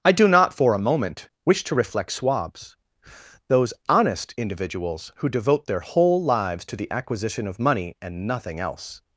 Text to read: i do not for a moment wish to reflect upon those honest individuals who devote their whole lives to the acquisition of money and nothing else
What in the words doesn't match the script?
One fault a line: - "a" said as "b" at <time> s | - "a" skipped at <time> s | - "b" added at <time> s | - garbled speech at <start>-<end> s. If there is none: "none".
- "upon" said as "swabs" at 2.1 s